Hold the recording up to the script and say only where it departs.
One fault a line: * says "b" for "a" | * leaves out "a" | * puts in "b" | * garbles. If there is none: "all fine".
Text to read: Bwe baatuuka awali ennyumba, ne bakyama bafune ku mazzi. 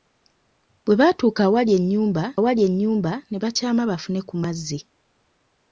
* puts in "awali ennyumba"